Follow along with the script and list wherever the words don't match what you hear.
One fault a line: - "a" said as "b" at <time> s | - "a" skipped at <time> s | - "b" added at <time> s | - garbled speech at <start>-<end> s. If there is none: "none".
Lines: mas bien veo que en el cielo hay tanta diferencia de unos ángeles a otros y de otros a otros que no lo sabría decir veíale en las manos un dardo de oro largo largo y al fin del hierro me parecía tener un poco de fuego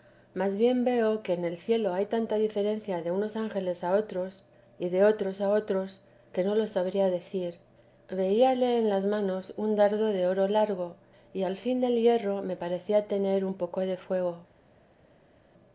- "largo" skipped at 11.0 s